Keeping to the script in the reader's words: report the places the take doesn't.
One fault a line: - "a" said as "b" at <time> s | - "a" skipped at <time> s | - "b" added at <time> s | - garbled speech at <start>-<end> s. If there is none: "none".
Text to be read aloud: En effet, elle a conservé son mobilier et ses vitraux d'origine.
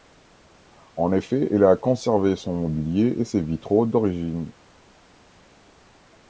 none